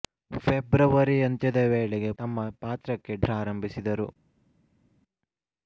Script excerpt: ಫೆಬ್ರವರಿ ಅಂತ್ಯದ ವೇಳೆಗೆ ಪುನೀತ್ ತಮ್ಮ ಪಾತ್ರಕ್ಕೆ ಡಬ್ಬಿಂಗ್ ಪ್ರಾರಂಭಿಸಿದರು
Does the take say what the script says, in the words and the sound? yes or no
no